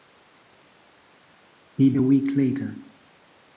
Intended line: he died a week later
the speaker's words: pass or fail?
fail